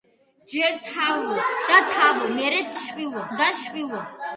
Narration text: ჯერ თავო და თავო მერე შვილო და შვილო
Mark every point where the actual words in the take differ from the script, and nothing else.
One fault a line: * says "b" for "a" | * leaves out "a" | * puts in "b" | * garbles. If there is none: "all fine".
all fine